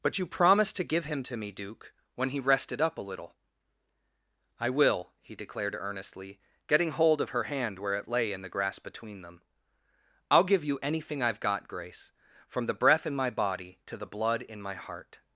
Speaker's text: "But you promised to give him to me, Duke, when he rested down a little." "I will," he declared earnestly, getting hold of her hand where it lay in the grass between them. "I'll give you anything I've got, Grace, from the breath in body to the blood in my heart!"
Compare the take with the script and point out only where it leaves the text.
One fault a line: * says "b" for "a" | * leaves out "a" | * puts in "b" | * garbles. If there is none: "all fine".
* says "up" for "down"
* puts in "my"